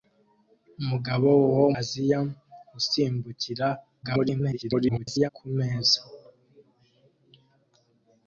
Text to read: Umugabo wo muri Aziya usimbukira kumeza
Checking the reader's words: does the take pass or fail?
fail